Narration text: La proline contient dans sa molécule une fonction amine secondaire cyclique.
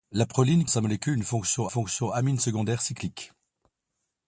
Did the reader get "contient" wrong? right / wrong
wrong